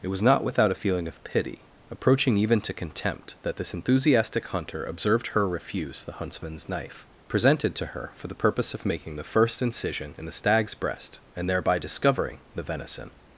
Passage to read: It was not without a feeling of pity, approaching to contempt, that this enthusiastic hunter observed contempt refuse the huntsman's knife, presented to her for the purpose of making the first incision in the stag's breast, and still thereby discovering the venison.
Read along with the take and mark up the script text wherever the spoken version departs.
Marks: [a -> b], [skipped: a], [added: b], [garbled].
It was not without a feeling of pity, approaching [added: even] to contempt, that this enthusiastic hunter observed [contempt -> her] refuse the huntsman's knife, presented to her for the purpose of making the first incision in the stag's breast, and [skipped: still] thereby discovering the venison.